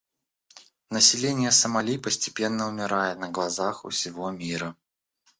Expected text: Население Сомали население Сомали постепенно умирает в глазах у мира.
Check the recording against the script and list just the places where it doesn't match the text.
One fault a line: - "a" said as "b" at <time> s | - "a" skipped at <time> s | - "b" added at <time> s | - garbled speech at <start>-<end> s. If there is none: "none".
- "население Сомали" skipped at 2.0 s
- "в" said as "на" at 3.2 s
- "всего" added at 3.9 s